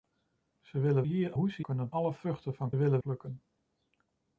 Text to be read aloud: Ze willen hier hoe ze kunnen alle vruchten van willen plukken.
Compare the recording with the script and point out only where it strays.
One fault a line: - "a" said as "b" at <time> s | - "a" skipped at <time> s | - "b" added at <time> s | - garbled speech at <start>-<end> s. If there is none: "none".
none